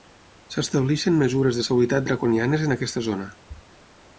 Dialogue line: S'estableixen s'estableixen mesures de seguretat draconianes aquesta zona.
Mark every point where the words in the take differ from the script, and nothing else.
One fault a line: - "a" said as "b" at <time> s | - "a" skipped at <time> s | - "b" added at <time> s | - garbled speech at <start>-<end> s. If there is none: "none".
- "s'estableixen" skipped at 1.2 s
- "en" added at 2.7 s